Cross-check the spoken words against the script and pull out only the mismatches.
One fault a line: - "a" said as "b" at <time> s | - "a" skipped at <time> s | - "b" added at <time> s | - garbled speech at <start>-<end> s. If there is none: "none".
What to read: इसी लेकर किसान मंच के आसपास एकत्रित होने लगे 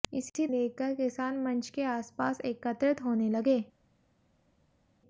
none